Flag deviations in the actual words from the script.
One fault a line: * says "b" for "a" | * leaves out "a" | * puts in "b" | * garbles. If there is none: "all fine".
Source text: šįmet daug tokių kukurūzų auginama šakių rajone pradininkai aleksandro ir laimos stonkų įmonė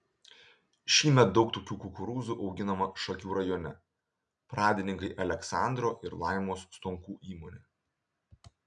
all fine